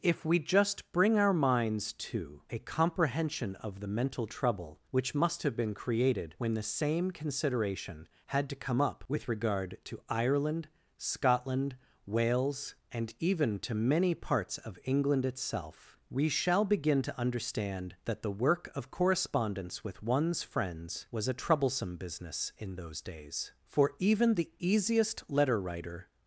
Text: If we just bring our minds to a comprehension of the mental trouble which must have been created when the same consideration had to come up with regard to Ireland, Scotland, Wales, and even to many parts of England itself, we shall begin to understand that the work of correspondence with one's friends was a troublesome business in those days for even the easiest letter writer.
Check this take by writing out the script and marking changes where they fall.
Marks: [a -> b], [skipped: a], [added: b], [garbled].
If we just bring our minds to a comprehension of the mental trouble which must have been created when the same consideration had to come up with regard to Ireland, Scotland, Wales, and even to many parts of England itself, we shall begin to understand that the work of correspondence with one's friends was a troublesome business in those days for even the easiest letter writer.